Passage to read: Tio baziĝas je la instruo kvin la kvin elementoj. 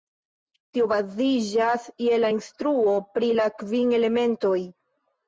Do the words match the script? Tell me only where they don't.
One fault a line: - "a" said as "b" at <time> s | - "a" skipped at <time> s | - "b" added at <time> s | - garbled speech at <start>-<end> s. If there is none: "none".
- "kvin" said as "pri" at 3.2 s